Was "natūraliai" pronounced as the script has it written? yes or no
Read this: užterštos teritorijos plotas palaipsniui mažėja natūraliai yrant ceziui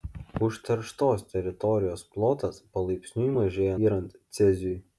no